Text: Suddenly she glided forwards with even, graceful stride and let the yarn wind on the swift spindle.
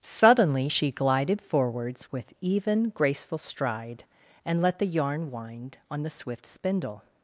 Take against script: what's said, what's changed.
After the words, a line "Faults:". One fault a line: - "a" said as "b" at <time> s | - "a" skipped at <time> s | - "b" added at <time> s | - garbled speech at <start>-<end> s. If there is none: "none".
Suddenly she glided forwards with even, graceful stride and let the yarn wind on the swift spindle.
Faults:
none